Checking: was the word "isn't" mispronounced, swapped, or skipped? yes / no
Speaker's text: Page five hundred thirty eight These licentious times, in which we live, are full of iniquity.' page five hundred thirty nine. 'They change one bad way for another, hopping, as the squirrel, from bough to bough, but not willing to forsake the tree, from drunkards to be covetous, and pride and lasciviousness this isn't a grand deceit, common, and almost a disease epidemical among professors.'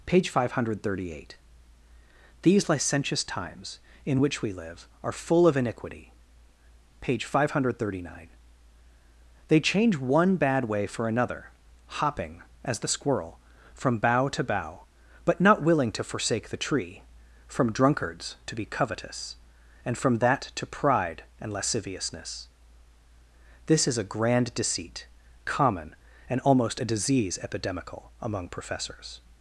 yes